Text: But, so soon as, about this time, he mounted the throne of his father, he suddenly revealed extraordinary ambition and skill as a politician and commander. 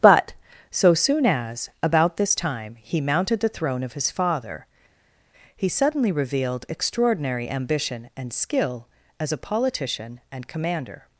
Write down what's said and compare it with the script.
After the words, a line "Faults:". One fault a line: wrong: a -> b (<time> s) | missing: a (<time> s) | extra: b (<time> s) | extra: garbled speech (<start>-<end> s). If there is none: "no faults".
But, so soon as, about this time, he mounted the throne of his father, he suddenly revealed extraordinary ambition and skill as a politician and commander.
Faults:
no faults